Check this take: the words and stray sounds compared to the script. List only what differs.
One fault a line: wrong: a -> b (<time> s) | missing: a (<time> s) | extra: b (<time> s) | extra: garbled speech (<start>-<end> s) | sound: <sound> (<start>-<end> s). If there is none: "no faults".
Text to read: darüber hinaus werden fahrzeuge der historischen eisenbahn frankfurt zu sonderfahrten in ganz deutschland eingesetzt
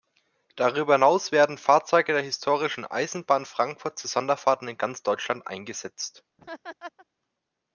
sound: laugh (6.4-7.1 s)